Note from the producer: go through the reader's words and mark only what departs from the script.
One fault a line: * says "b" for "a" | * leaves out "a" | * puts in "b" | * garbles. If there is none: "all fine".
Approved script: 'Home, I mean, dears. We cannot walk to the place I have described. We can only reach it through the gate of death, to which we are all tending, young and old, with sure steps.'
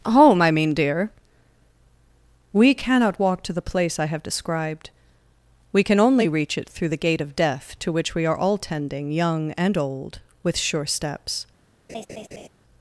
* says "dear" for "dears"